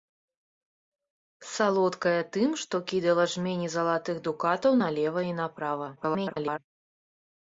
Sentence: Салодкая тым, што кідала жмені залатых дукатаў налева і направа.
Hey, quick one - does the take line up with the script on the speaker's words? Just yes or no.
no